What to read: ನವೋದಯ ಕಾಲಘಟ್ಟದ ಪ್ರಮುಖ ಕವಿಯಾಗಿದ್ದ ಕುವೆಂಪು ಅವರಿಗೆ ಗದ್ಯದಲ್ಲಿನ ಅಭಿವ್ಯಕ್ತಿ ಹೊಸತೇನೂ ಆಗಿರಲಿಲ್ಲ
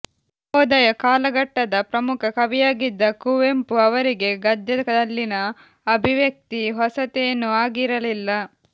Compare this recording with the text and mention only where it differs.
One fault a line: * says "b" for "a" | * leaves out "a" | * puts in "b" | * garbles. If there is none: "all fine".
all fine